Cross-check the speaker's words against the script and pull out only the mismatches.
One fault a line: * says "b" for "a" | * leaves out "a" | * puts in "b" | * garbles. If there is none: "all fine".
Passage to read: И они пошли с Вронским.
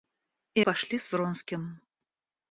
* leaves out "они"